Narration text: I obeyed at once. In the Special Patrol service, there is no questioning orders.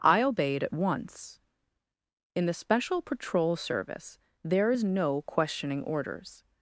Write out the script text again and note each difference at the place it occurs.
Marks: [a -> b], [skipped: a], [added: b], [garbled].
I obeyed at once. In the Special Patrol service, there is no questioning orders.